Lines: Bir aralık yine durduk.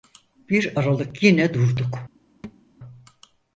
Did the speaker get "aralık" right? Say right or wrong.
right